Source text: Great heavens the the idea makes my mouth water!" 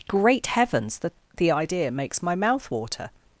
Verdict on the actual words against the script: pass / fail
pass